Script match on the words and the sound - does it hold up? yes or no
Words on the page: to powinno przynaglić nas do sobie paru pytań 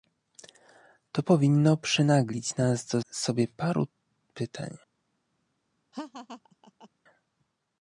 no